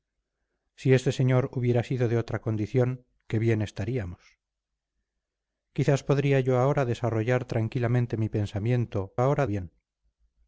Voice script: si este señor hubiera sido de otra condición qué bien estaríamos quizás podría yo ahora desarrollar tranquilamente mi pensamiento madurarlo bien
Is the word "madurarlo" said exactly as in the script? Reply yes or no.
no